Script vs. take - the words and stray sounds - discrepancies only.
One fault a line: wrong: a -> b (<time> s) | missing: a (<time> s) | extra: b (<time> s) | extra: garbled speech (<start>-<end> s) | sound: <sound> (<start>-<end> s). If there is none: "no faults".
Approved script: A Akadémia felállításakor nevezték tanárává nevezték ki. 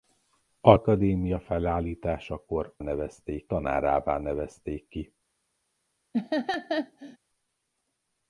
sound: laugh (6.1-7.2 s)